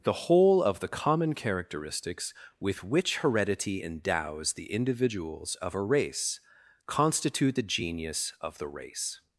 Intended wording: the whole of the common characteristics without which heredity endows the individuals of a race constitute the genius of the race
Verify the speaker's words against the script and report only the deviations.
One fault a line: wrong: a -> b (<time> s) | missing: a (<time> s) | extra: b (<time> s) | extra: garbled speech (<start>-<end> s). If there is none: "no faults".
wrong: without -> with (2.6 s)